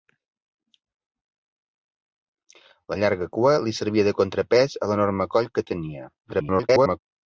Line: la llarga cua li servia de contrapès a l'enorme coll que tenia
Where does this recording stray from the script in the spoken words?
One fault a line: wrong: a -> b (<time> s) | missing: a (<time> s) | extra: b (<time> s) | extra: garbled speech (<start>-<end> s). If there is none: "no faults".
extra: garbled speech (6.2-7.0 s)